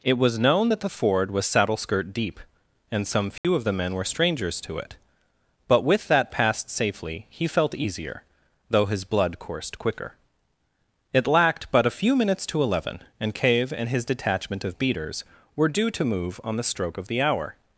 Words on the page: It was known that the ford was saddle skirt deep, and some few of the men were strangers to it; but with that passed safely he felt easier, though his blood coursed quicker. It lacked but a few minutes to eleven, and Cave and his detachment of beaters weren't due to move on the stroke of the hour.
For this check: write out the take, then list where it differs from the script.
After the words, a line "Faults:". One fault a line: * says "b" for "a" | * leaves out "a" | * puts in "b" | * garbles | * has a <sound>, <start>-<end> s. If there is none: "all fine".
It was known that the ford was saddle skirt deep, and some few of the men were strangers to it; but with that passed safely he felt easier, though his blood coursed quicker. It lacked but a few minutes to eleven, and Cave and his detachment of beaters were due to move on the stroke of the hour.
Faults:
* has a dropout, 3.4-3.4 s
* says "were" for "weren't"